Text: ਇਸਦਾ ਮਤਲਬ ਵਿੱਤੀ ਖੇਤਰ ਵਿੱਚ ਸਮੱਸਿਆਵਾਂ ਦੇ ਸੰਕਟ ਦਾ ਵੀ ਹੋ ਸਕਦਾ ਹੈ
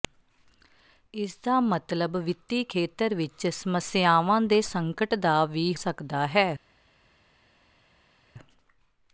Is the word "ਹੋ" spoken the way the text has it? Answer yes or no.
no